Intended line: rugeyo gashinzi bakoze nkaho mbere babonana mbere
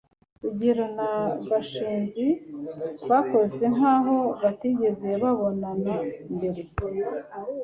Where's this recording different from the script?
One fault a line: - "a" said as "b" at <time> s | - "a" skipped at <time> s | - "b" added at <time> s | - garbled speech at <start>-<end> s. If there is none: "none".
- "na" added at 1.0 s
- "mbere" said as "batigeze" at 4.4 s